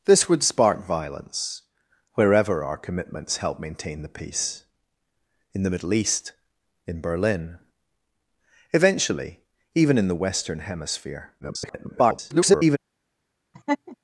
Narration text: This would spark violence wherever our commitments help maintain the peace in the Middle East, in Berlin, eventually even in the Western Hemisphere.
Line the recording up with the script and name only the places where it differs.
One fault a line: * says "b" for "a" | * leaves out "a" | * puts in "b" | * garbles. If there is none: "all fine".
* garbles